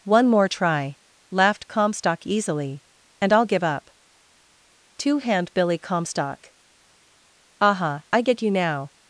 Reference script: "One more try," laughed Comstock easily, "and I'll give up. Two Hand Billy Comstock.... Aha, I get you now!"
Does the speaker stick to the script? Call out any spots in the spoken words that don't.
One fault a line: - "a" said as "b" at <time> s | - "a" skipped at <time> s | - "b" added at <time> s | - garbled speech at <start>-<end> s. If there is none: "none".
none